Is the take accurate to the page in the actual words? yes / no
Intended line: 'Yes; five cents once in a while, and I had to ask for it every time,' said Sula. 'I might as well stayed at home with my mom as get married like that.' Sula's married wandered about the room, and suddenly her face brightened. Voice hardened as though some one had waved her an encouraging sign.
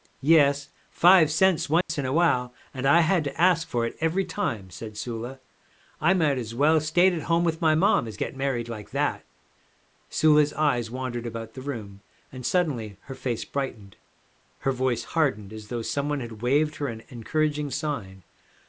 no